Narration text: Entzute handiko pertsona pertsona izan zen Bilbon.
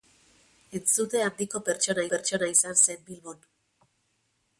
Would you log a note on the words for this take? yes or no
no